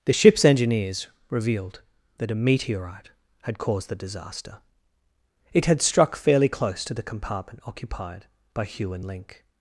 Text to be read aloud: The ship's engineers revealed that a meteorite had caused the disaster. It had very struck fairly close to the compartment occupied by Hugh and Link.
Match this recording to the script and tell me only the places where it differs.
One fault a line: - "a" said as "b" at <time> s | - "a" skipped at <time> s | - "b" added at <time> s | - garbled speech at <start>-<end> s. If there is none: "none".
- "very" skipped at 5.8 s